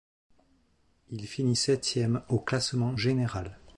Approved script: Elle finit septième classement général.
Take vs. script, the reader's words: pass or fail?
fail